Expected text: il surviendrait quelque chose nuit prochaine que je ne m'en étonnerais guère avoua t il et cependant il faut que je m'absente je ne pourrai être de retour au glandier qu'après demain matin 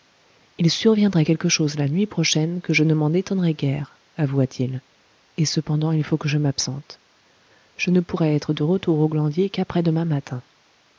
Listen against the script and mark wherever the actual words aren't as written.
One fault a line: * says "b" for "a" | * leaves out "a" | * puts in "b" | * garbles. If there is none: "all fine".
* puts in "la"